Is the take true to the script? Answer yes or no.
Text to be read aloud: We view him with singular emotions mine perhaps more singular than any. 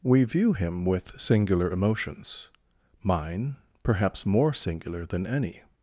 yes